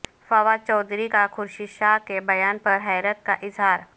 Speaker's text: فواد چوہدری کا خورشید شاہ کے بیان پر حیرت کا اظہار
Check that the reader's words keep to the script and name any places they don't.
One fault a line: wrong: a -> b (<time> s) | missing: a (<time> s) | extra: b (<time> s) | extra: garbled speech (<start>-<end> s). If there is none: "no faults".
no faults